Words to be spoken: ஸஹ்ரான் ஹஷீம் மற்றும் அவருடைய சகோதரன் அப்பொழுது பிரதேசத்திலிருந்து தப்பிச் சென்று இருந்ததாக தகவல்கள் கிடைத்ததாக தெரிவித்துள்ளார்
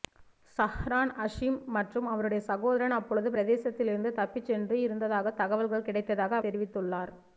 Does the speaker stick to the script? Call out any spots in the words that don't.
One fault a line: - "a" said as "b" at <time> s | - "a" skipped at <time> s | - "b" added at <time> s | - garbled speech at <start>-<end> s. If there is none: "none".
none